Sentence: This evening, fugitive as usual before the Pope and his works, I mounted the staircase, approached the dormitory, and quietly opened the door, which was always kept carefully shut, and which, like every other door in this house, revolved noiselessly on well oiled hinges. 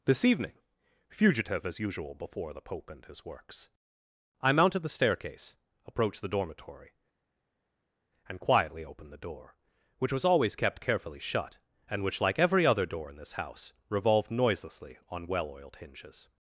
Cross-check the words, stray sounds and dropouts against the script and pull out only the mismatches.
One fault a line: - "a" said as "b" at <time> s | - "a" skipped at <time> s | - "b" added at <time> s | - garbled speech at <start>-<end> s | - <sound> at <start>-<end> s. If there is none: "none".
none